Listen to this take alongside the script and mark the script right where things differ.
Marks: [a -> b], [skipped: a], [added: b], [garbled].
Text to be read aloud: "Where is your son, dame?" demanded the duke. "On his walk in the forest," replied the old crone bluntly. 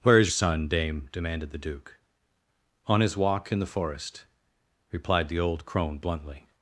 "Where is [skipped: your] son, dame?" demanded the duke. "On his walk in the forest," replied the old crone bluntly.